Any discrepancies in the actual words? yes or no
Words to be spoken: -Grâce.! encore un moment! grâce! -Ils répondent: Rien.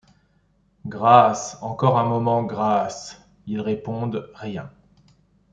no